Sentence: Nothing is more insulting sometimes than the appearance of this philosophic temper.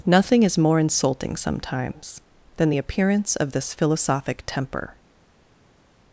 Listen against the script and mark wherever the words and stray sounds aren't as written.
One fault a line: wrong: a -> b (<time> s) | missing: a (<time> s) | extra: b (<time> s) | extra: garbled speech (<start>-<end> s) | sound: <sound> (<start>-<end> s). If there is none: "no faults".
no faults